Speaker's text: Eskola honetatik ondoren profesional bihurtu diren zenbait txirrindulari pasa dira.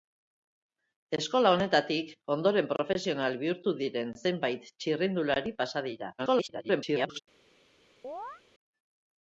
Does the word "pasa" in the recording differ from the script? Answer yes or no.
no